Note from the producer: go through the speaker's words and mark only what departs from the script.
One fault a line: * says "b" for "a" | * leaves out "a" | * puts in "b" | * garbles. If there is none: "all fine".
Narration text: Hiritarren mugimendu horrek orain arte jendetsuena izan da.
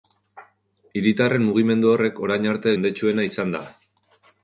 all fine